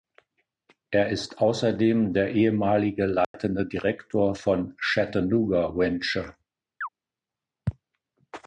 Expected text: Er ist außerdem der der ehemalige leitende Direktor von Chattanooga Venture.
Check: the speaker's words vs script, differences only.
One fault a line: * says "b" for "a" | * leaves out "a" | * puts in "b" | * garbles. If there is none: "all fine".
* leaves out "der"